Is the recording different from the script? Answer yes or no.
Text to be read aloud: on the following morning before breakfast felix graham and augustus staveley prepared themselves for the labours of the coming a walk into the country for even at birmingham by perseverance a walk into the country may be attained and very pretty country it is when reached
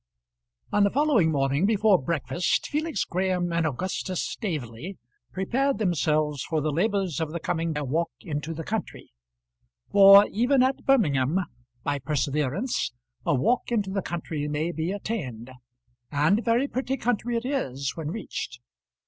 no